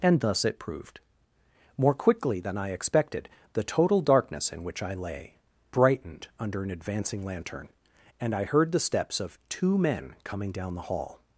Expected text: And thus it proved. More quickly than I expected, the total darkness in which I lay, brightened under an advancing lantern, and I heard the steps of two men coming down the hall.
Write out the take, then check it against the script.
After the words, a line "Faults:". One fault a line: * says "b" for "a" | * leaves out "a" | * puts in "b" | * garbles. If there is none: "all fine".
And thus it proved. More quickly than I expected, the total darkness in which I lay, brightened under an advancing lantern, and I heard the steps of two men coming down the hall.
Faults:
all fine